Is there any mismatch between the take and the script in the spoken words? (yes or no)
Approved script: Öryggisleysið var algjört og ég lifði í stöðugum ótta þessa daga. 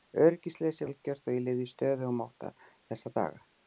yes